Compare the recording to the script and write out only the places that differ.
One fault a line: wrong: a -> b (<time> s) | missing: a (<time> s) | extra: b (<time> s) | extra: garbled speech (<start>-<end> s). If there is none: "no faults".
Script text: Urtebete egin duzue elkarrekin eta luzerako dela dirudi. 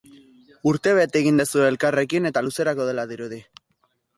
no faults